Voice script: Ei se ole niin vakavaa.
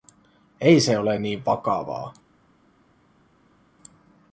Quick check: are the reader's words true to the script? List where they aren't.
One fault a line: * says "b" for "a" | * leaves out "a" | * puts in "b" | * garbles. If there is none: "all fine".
all fine